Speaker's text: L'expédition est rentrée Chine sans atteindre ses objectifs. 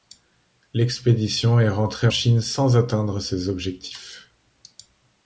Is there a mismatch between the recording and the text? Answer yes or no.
no